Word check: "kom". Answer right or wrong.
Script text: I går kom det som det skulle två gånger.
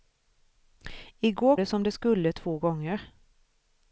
wrong